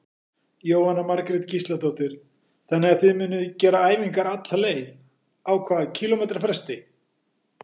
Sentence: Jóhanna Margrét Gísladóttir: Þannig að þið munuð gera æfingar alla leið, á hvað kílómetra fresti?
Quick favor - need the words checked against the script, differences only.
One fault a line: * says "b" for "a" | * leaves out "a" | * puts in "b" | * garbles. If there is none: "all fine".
all fine